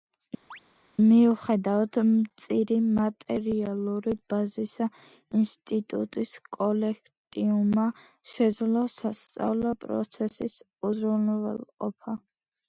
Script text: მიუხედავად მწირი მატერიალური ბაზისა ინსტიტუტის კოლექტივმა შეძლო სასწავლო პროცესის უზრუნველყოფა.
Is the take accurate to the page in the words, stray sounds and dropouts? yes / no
no